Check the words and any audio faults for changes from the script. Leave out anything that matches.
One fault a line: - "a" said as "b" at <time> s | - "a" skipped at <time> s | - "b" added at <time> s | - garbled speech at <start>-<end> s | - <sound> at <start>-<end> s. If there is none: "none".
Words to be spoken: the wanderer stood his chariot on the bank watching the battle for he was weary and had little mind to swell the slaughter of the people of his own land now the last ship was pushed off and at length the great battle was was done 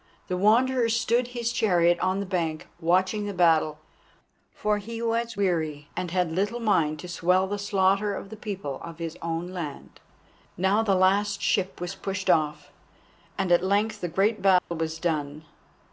- dropout at 14.6-14.7 s
- "was" skipped at 15.0 s